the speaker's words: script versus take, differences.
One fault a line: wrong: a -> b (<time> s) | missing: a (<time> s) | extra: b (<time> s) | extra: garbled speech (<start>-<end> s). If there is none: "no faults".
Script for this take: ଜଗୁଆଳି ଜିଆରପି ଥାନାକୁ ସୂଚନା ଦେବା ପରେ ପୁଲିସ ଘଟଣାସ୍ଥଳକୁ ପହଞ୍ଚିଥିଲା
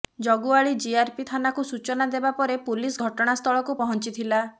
no faults